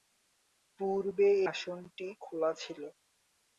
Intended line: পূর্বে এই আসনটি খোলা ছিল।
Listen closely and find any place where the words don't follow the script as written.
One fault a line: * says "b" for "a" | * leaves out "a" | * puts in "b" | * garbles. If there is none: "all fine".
* leaves out "এই"